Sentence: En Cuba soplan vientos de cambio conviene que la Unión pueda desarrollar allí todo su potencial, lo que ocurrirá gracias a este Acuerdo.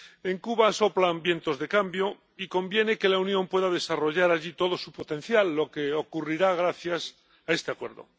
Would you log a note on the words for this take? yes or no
yes